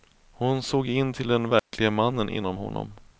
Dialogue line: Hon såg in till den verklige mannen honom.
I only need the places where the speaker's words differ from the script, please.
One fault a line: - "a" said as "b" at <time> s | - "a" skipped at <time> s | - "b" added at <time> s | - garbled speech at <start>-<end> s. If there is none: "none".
- "inom" added at 2.3 s